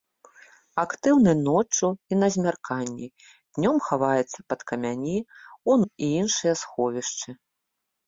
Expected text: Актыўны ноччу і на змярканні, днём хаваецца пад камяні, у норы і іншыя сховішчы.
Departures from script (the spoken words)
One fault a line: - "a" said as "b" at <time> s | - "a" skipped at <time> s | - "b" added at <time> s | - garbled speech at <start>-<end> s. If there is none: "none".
- "норы" skipped at 5.8 s